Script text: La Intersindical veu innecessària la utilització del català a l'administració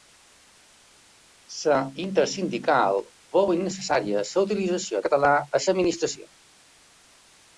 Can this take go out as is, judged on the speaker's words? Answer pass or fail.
fail